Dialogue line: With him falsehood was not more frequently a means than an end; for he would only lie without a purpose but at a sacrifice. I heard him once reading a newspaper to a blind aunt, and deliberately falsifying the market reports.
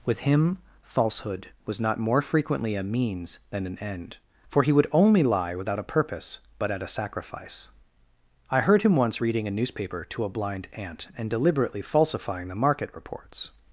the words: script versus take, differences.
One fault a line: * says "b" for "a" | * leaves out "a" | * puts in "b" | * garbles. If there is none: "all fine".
all fine